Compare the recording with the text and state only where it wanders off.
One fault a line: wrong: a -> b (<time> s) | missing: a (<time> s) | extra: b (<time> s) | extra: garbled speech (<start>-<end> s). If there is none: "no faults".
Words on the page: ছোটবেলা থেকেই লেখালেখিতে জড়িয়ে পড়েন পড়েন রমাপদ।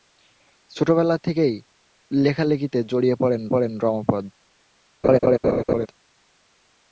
no faults